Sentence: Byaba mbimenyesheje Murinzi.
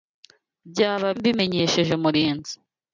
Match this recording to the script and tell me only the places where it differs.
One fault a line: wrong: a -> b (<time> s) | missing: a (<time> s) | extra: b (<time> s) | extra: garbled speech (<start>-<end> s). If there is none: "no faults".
no faults